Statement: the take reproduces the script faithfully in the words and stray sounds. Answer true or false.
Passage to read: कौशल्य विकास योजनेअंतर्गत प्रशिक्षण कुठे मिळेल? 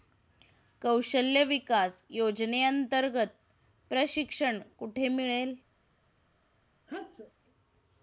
false